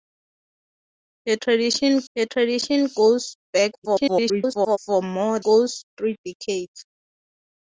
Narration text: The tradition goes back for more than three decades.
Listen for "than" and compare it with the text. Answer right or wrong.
wrong